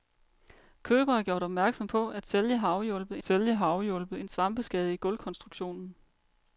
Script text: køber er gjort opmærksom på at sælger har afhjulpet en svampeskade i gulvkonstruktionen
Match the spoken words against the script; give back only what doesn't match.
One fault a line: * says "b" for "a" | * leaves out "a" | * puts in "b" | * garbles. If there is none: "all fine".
* puts in "sælger har afhjulpet"